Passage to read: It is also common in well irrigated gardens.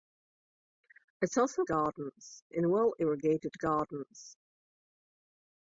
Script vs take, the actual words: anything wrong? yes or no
yes